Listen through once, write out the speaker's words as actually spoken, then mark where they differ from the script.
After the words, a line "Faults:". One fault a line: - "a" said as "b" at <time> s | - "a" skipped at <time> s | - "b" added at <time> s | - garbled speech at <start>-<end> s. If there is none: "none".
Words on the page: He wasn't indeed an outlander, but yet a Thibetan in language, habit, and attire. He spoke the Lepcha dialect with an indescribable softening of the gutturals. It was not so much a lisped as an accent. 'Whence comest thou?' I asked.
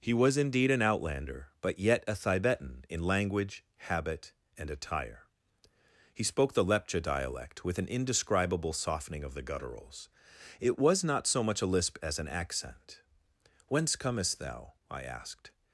He was indeed an outlander, but yet a Thibetan in language, habit, and attire. He spoke the Lepcha dialect with an indescribable softening of the gutturals. It was not so much a lisp as an accent. 'Whence comest thou?' I asked.
Faults:
- "wasn't" said as "was" at 0.1 s
- "lisped" said as "lisp" at 11.7 s